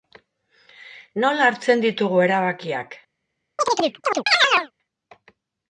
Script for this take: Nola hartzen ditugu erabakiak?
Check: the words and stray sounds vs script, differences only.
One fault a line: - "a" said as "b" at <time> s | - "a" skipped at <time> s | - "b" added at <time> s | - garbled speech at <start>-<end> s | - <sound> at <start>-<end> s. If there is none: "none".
- chirp at 3.6-4.7 s